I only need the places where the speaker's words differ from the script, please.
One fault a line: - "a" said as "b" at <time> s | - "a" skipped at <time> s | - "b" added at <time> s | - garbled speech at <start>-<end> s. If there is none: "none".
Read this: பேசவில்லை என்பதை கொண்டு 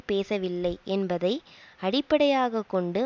- "அடிப்படையாக" added at 1.8 s